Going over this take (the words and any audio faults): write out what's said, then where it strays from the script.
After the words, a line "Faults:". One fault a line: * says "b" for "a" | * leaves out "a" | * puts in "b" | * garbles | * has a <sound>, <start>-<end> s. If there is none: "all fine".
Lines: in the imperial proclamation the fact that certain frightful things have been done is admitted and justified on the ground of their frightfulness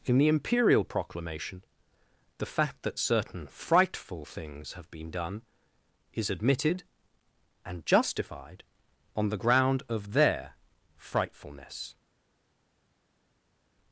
in the imperial proclamation the fact that certain frightful things have been done is admitted and justified on the ground of their frightfulness
Faults:
all fine